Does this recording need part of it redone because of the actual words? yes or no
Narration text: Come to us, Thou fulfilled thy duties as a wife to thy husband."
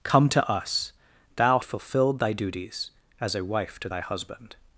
no